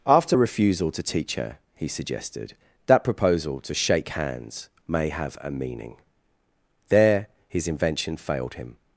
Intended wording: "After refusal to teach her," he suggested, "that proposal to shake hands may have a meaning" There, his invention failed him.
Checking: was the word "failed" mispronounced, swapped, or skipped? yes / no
no